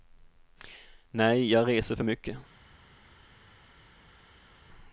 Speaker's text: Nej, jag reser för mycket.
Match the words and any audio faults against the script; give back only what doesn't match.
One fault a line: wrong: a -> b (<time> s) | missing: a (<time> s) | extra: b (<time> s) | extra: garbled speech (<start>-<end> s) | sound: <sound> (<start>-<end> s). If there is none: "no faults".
no faults